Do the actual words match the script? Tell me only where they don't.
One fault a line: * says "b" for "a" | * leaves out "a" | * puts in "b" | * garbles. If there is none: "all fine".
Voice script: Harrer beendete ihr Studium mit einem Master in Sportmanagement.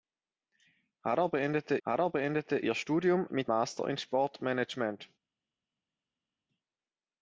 * puts in "harrer beendete"
* leaves out "einem"